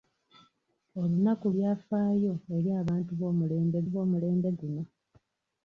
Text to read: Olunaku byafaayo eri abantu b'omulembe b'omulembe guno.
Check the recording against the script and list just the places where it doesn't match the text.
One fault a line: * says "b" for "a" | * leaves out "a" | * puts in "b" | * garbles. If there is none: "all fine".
all fine